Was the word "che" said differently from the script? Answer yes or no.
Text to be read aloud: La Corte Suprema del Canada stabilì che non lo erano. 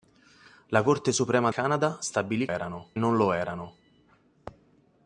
yes